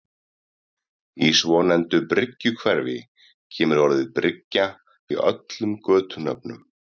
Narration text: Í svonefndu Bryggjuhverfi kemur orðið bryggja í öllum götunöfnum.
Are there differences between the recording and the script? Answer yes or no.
no